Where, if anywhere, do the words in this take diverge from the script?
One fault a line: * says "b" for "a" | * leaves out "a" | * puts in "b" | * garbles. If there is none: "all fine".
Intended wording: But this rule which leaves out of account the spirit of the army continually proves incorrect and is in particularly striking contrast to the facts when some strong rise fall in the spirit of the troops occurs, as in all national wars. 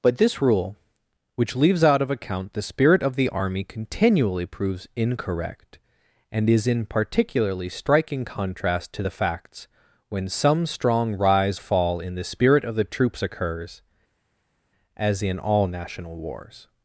all fine